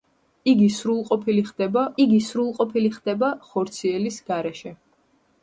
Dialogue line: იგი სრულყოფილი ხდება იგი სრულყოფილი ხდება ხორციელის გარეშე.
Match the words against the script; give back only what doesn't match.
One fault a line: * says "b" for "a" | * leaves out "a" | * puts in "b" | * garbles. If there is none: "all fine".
all fine